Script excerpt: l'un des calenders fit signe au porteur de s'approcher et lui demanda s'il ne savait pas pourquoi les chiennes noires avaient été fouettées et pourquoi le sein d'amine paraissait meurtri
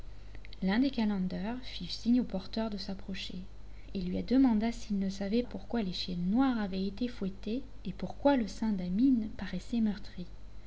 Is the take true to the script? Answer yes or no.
no